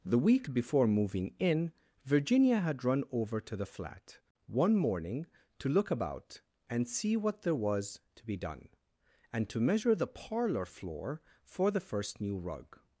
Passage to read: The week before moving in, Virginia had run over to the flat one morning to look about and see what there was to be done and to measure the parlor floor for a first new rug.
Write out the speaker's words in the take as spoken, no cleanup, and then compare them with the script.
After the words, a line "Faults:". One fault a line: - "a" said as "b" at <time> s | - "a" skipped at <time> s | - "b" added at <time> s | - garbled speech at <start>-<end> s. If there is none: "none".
The week before moving in, Virginia had run over to the flat one morning to look about and see what there was to be done and to measure the parlor floor for the first new rug.
Faults:
- "a" said as "the" at 11.7 s